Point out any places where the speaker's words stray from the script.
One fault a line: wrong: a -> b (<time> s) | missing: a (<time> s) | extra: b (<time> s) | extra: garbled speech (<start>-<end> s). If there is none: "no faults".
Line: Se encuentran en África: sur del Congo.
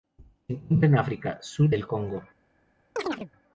no faults